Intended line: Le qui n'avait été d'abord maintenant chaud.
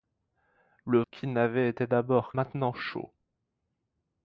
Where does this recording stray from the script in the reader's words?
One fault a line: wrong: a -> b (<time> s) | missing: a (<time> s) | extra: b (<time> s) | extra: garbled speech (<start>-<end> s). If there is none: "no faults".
no faults